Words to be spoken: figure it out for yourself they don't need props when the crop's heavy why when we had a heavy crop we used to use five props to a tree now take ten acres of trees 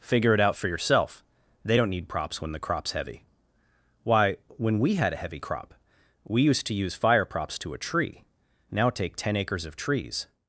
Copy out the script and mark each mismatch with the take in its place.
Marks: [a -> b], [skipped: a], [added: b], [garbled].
figure it out for yourself they don't need props when the crop's heavy why when we had a heavy crop we used to use [five -> fire] props to a tree now take ten acres of trees